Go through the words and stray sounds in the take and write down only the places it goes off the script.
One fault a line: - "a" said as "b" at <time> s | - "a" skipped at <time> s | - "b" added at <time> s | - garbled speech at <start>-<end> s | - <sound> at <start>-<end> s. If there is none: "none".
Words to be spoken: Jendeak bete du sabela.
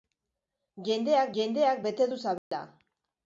- "jendeak" added at 1.4 s
- dropout at 2.4-2.5 s